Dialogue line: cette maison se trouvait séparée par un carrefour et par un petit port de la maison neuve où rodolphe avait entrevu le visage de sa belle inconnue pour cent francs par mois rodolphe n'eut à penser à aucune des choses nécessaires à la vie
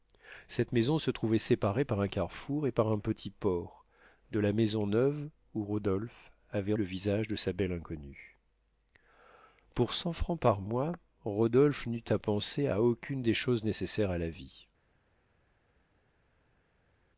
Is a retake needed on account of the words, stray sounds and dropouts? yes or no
yes